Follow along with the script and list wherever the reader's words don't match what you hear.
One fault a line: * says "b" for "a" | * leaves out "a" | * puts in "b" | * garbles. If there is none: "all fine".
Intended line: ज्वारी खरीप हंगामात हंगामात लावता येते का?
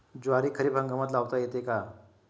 * leaves out "हंगामात"